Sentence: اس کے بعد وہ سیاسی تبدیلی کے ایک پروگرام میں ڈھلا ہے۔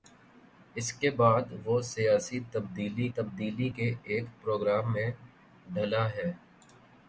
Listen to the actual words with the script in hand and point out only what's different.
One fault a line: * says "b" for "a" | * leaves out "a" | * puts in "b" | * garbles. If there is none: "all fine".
* puts in "تبدیلی"